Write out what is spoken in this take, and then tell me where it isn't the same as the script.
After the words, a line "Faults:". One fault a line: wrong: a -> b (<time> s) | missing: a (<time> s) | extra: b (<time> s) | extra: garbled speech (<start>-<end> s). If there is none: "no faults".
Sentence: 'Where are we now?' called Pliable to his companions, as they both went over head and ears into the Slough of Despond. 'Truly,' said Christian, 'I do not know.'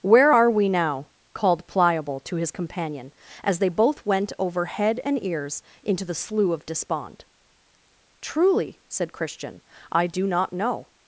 'Where are we now?' called Pliable to his companion, as they both went over head and ears into the Slough of Despond. 'Truly,' said Christian, 'I do not know.'
Faults:
wrong: companions -> companion (2.5 s)